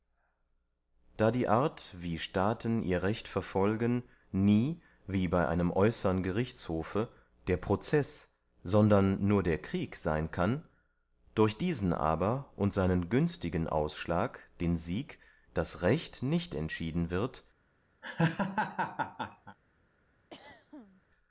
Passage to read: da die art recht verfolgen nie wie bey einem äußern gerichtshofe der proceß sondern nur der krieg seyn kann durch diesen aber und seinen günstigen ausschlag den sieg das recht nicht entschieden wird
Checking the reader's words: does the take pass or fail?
fail